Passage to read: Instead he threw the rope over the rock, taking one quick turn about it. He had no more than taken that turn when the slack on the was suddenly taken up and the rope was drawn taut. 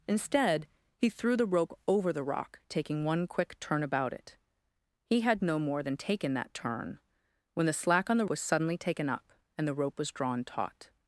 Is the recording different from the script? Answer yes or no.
no